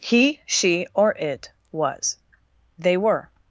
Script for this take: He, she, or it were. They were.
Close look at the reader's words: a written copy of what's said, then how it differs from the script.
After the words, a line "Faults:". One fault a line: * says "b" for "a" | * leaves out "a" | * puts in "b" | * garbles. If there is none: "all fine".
He, she, or it was. They were.
Faults:
* says "was" for "were"